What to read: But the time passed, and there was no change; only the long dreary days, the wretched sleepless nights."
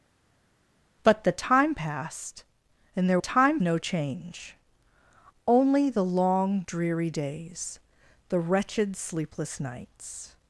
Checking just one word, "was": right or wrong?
wrong